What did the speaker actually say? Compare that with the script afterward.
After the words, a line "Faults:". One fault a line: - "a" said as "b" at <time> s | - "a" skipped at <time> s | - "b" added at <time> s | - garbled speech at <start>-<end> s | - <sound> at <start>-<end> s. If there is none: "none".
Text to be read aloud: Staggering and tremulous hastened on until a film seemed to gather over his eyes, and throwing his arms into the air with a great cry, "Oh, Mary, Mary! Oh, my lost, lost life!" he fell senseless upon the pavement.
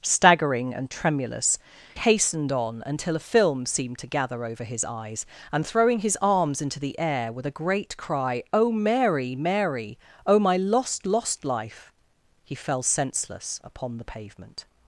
Staggering and tremulous hastened on until a film seemed to gather over his eyes, and throwing his arms into the air with a great cry, "Oh, Mary, Mary! Oh, my lost, lost life!" he fell senseless upon the pavement.
Faults:
none